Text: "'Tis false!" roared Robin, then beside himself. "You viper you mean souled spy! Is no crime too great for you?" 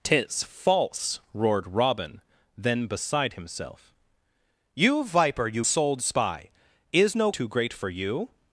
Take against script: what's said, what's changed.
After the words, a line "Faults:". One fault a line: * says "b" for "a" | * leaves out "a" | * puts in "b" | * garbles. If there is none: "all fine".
"'Tis false!" roared Robin, then beside himself. "You viper you souled spy! Is no too great for you?"
Faults:
* leaves out "mean"
* leaves out "crime"